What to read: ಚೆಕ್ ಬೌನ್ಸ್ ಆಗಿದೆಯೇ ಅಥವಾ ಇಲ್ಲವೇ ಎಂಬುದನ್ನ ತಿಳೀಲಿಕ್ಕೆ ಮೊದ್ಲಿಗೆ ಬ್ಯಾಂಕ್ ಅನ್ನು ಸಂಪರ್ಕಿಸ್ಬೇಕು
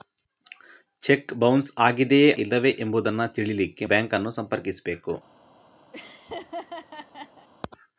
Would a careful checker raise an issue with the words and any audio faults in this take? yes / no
yes